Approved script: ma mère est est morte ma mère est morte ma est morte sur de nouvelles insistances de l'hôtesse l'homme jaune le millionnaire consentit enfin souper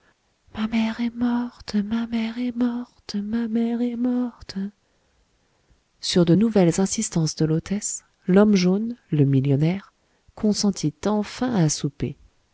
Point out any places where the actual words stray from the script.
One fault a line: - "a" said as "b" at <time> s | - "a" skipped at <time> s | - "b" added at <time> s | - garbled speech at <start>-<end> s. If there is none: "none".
- "est" skipped at 1.1 s
- "mère" added at 3.5 s
- "à" added at 11.5 s